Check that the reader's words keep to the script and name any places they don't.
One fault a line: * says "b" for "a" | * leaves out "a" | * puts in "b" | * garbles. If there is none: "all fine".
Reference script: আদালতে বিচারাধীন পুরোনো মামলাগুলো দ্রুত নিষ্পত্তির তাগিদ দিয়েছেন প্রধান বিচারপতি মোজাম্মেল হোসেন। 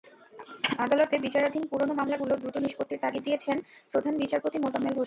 all fine